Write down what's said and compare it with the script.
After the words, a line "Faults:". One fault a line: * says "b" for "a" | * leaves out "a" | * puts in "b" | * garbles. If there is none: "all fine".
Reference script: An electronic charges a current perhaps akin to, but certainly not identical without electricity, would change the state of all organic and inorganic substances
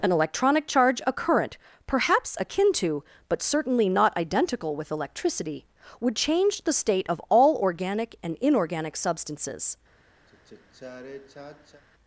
An electronic charge a current perhaps akin to, but certainly not identical with electricity, would change the state of all organic and inorganic substances
Faults:
* says "charge" for "charges"
* says "with" for "without"